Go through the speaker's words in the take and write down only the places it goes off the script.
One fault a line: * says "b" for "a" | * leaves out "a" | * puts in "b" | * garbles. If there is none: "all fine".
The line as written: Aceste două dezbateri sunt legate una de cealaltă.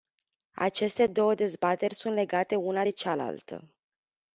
all fine